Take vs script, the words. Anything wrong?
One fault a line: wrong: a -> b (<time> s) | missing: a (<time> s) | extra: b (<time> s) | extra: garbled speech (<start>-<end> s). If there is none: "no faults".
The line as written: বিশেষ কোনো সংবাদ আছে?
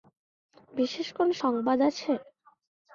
no faults